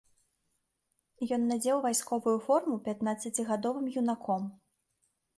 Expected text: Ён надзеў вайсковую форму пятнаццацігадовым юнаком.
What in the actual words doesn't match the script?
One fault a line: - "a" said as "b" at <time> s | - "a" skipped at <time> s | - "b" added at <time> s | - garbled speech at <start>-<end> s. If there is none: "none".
none